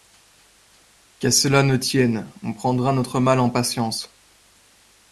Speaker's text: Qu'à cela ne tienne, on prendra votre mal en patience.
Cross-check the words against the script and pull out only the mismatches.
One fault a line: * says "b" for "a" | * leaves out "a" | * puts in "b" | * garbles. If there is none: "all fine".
* says "notre" for "votre"